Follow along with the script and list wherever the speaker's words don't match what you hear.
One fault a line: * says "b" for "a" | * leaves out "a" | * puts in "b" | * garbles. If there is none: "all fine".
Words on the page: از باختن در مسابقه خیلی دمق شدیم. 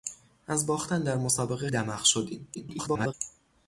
* leaves out "خیلی"
* garbles